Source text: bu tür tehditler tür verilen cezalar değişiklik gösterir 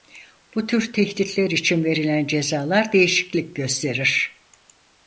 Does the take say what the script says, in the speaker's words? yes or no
no